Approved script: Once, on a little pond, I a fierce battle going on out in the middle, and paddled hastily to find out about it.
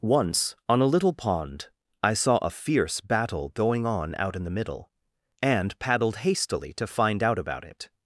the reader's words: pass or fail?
fail